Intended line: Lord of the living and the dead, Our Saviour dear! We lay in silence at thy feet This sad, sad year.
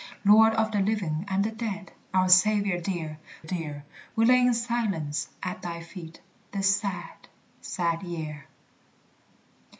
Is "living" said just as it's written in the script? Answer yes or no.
yes